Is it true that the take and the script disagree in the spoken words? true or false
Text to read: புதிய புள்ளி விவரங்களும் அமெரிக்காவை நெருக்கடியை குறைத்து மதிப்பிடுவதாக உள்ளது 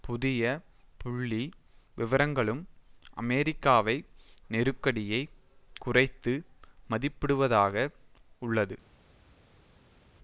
false